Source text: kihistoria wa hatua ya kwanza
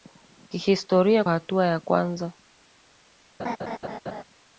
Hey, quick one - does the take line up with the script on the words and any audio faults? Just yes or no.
no